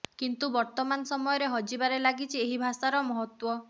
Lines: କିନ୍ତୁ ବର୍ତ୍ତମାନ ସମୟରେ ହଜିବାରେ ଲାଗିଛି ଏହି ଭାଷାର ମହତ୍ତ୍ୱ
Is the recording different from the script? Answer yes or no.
no